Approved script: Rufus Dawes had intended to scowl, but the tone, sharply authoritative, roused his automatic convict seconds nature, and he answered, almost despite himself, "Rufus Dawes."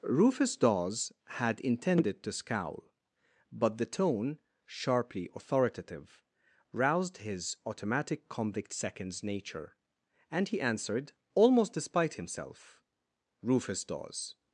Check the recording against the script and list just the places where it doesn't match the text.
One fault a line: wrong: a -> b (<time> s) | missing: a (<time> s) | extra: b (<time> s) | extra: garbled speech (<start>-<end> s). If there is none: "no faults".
no faults